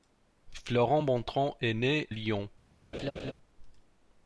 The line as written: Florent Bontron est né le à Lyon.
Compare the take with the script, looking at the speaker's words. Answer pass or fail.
fail